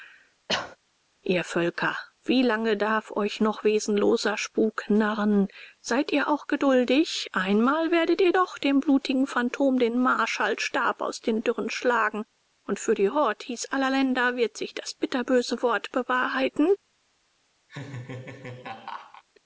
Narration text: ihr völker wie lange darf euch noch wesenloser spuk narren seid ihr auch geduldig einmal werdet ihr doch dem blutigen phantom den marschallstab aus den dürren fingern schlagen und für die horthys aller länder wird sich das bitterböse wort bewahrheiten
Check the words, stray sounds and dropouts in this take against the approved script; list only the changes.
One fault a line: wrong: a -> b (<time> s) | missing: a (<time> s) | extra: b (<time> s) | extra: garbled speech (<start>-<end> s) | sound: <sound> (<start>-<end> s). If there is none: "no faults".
sound: cough (0.5-0.8 s)
missing: fingern (11.7 s)
sound: laugh (17.7-19.2 s)